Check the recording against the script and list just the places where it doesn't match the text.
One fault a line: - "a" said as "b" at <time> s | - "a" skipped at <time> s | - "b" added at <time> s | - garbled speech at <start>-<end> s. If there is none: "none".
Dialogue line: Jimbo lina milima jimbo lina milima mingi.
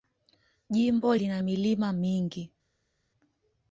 - "jimbo lina milima" skipped at 1.9 s